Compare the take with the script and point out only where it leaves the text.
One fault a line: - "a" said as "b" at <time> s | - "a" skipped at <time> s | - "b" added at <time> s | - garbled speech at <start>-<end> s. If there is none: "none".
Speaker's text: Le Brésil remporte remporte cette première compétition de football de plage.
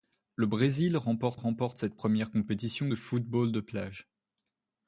none